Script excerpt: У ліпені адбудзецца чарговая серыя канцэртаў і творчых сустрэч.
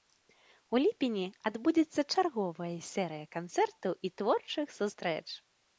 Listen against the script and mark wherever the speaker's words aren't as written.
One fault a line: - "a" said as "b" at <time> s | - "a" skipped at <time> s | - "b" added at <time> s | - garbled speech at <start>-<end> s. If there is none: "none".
none